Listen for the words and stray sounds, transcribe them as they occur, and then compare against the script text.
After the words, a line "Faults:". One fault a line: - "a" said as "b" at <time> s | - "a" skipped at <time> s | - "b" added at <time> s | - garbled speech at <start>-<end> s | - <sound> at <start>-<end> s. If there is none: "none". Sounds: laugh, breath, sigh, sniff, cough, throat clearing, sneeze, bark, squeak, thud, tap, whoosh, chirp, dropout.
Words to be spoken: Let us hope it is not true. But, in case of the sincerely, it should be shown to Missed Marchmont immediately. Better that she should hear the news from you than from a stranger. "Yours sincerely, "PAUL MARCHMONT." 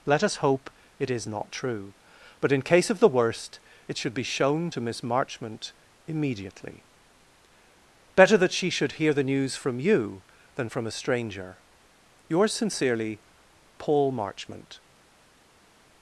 Let us hope it is not true. But, in case of the worst, it should be shown to Miss Marchmont immediately. Better that she should hear the news from you than from a stranger. "Yours sincerely, "PAUL MARCHMONT."
Faults:
- "sincerely" said as "worst" at 3.1 s
- "Missed" said as "Miss" at 4.8 s